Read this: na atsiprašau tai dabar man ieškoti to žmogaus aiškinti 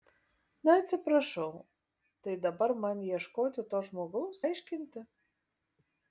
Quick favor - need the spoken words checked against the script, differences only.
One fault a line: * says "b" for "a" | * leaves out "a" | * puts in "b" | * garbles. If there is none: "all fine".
all fine